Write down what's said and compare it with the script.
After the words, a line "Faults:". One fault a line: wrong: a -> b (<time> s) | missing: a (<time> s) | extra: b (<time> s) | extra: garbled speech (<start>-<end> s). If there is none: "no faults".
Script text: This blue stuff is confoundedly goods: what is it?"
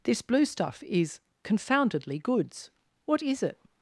This blue stuff is confoundedly goods: what is it?"
Faults:
no faults